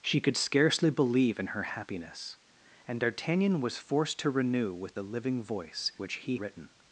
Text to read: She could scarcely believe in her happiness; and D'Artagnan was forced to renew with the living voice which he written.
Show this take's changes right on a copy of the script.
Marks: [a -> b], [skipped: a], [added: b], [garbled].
She could scarcely believe in her happiness; and D'Artagnan was forced to renew with the living voice which he written.